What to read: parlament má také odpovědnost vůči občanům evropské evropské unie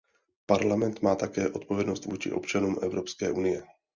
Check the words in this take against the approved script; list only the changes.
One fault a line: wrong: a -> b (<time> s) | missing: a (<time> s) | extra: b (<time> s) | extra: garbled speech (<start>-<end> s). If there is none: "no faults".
missing: evropské (3.3 s)